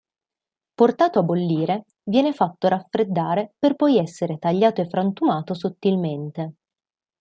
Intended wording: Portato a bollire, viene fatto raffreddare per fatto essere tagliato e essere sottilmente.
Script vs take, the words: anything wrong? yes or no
yes